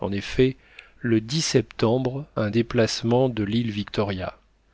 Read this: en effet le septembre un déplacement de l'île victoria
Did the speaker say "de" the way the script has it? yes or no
yes